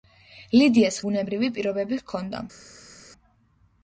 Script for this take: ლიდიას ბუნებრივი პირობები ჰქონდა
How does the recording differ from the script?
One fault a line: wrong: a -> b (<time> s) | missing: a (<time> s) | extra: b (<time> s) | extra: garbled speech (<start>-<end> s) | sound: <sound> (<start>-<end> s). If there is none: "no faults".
no faults